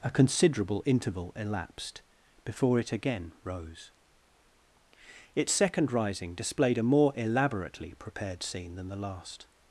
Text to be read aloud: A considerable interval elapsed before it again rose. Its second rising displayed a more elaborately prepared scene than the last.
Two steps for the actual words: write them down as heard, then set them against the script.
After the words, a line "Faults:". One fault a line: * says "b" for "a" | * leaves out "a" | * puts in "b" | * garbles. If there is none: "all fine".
A considerable interval elapsed before it again rose. Its second rising displayed a more elaborately prepared scene than the last.
Faults:
all fine